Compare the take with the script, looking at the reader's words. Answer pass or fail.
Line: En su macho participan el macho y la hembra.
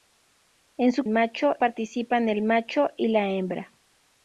pass